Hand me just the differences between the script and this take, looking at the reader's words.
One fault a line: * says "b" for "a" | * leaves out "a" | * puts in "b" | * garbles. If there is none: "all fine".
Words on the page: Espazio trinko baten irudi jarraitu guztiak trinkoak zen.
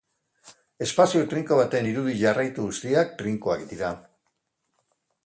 * says "dira" for "zen"